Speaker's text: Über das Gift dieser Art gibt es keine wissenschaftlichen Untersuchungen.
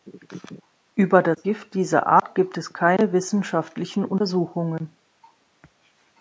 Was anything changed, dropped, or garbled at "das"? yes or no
no